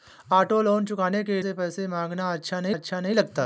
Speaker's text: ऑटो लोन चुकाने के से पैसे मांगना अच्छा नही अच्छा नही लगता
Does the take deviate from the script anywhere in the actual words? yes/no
no